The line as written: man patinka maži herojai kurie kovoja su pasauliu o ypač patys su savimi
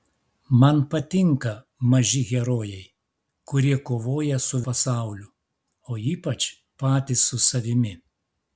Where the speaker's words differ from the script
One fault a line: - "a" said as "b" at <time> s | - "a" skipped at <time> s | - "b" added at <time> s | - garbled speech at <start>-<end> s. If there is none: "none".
none